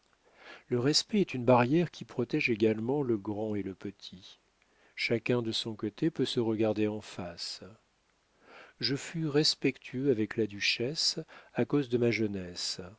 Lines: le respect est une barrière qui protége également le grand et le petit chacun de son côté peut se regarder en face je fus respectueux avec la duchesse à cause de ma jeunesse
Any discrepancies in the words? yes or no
no